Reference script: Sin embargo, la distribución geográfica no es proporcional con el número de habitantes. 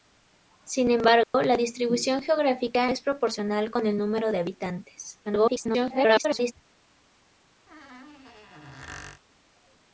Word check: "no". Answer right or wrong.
wrong